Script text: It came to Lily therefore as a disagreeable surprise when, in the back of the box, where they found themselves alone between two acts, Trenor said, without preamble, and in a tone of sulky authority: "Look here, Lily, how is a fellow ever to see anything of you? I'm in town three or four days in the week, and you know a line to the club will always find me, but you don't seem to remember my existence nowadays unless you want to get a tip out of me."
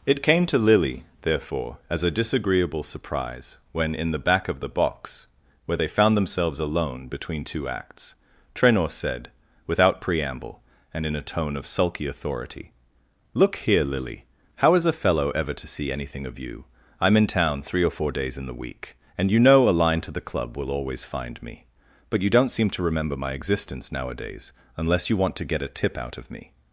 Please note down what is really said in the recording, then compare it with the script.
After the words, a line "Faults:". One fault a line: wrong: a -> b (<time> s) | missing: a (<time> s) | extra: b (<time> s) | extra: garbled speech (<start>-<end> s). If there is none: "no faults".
It came to Lily therefore as a disagreeable surprise when, in the back of the box, where they found themselves alone between two acts, Trenor said, without preamble, and in a tone of sulky authority: "Look here, Lily, how is a fellow ever to see anything of you? I'm in town three or four days in the week, and you know a line to the club will always find me, but you don't seem to remember my existence nowadays unless you want to get a tip out of me."
Faults:
no faults